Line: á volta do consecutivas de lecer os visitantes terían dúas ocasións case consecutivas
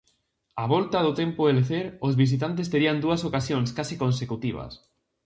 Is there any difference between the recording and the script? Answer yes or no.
yes